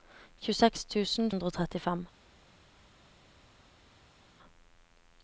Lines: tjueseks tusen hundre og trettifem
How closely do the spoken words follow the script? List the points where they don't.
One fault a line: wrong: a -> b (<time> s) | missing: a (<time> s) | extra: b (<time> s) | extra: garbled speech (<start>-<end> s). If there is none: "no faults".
no faults